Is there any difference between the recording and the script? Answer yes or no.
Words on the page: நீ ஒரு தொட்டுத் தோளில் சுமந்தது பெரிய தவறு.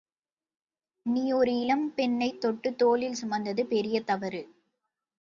yes